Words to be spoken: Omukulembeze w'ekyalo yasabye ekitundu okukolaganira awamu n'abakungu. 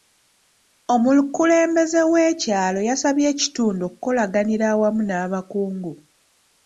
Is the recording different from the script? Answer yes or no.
no